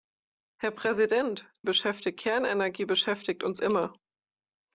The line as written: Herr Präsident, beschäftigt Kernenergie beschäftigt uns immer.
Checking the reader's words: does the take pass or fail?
pass